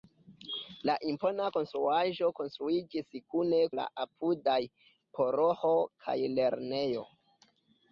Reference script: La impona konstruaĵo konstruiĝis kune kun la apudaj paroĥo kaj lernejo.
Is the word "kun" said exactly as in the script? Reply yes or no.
no